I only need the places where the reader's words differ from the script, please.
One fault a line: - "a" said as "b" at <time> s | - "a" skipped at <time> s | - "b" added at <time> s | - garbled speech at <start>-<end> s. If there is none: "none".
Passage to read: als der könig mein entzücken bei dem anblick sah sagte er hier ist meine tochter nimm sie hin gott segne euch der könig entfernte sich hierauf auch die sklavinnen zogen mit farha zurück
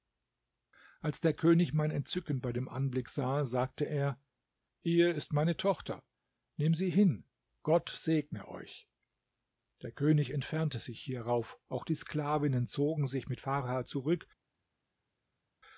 - "sich" added at 13.1 s